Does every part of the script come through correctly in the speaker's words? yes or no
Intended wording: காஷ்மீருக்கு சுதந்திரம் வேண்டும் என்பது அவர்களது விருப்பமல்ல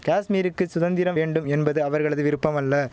yes